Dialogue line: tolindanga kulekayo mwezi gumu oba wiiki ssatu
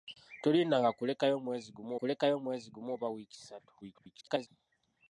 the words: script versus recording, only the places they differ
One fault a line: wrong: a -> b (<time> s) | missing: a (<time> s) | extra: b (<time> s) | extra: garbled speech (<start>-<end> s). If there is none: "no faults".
extra: kulekayo mwezi gumu (2.0 s)
extra: garbled speech (3.8-4.5 s)